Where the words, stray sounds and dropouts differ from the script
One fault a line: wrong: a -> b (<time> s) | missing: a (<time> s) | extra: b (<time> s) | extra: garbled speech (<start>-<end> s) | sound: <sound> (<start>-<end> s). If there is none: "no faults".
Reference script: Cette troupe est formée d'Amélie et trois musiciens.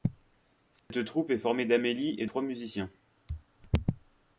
sound: dropout (0.8-0.9 s)